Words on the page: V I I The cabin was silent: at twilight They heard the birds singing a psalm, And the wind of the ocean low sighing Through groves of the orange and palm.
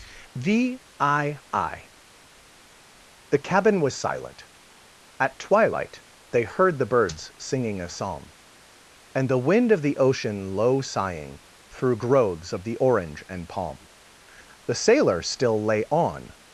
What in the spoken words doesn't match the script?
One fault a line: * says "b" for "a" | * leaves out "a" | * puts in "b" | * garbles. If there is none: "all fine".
* puts in "The sailor still lay on"